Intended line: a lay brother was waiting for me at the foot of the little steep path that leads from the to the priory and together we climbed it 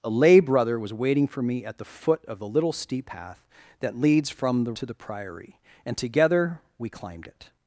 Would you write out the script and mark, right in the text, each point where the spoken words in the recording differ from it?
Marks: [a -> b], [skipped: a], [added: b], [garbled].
a lay brother was waiting for me at the foot of the little steep path that leads from the to the priory and together we climbed it